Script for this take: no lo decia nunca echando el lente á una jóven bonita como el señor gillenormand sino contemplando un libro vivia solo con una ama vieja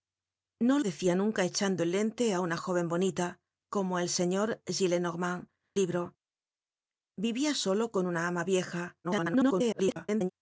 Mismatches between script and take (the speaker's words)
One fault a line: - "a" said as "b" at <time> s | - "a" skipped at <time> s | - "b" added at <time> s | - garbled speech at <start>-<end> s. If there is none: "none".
- "lo" skipped at 0.8 s
- "sino contemplando un" skipped at 5.5 s
- garbled speech at 9.0-10.3 s